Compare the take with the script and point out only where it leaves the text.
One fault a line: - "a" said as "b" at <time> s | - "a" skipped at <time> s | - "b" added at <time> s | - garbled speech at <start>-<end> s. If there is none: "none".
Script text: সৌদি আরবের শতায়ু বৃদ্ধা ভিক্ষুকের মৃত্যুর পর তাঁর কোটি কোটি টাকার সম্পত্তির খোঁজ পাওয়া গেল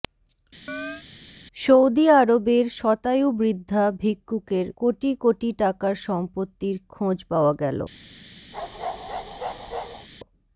- "মৃত্যুর পর তাঁর" skipped at 4.7 s